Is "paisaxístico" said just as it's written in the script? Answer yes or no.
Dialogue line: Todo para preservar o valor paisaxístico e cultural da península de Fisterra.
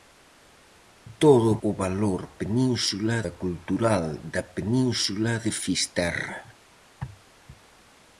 no